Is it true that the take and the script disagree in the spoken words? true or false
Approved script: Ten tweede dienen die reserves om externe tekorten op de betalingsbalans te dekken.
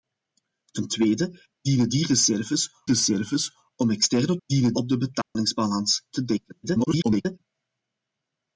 true